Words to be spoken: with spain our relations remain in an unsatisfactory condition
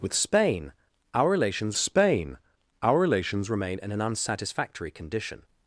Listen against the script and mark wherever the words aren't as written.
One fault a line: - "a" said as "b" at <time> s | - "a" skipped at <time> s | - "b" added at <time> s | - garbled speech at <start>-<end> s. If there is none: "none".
- "spain our relations" added at 1.8 s